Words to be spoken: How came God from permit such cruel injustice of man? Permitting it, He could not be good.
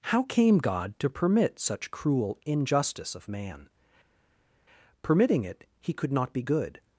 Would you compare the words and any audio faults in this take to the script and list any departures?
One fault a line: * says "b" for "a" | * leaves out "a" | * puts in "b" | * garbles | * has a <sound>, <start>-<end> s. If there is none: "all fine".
* says "to" for "from"